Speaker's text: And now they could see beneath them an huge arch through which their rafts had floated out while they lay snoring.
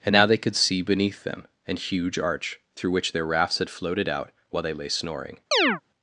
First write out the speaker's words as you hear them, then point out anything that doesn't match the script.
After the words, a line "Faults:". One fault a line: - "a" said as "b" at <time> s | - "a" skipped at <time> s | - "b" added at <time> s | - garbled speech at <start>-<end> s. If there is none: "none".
And now they could see beneath them an huge arch through which their rafts had floated out while they lay snoring.
Faults:
none